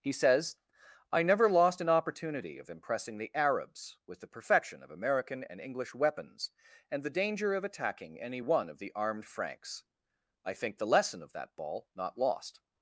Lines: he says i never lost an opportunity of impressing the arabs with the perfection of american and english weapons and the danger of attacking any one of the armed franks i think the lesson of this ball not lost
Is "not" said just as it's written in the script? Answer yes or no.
yes